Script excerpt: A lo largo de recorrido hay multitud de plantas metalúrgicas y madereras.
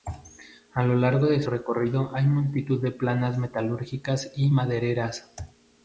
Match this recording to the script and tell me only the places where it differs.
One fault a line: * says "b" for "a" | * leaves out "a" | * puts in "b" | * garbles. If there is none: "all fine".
all fine